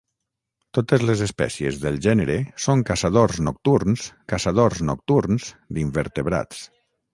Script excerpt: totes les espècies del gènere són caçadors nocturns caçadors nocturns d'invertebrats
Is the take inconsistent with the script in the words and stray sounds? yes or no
no